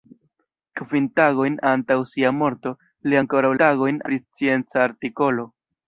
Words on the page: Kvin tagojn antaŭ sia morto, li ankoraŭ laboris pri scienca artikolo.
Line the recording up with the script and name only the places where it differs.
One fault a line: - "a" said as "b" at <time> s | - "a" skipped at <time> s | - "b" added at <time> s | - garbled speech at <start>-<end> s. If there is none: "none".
- "laboris" said as "tagojn" at 3.6 s